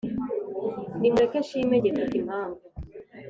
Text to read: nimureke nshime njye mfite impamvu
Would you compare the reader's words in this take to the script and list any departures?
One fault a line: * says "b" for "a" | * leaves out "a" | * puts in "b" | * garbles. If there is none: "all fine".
all fine